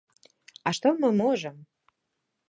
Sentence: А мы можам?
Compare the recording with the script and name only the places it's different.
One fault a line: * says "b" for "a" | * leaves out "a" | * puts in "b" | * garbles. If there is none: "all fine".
* puts in "што"